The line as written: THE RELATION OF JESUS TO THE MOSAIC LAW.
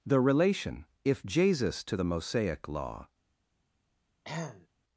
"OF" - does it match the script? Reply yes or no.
no